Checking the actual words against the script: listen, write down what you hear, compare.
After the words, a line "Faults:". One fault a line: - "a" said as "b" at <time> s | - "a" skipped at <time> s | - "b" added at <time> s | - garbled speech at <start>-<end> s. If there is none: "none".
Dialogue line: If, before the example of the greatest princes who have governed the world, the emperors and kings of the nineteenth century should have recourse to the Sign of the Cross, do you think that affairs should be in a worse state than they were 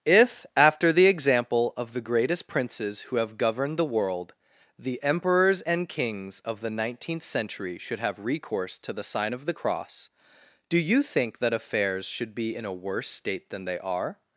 If, after the example of the greatest princes who have governed the world, the emperors and kings of the nineteenth century should have recourse to the Sign of the Cross, do you think that affairs should be in a worse state than they are
Faults:
- "before" said as "after" at 0.6 s
- "were" said as "are" at 13.8 s